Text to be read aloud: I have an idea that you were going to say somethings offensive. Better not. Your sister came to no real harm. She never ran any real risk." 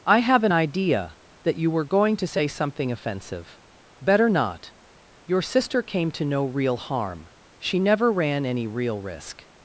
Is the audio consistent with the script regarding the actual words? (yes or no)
no